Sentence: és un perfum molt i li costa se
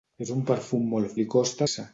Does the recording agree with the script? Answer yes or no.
yes